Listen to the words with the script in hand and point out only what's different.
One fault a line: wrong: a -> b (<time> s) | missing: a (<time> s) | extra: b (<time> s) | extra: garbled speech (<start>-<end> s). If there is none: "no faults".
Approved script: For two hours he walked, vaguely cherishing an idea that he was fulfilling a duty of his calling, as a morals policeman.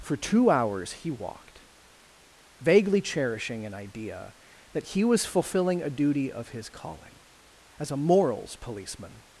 no faults